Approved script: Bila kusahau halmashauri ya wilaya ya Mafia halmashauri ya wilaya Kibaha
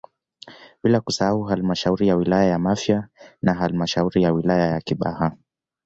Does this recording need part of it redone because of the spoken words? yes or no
yes